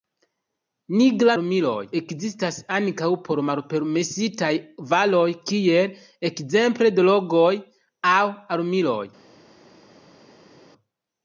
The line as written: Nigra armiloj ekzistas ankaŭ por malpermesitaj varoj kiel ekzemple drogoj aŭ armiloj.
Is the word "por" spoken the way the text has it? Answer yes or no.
yes